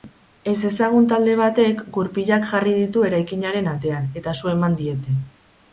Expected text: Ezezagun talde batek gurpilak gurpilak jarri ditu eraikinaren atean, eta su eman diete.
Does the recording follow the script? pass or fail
fail